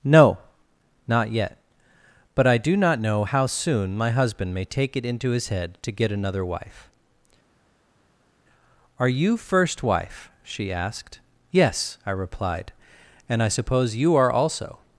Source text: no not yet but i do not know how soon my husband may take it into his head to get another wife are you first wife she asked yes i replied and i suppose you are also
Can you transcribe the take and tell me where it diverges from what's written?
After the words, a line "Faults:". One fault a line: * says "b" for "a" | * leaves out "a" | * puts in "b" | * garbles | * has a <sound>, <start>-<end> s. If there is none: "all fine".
no not yet but i do not know how soon my husband may take it into his head to get another wife are you first wife she asked yes i replied and i suppose you are also
Faults:
all fine